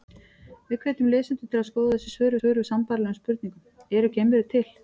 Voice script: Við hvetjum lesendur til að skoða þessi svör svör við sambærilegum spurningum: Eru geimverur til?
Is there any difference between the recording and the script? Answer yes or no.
no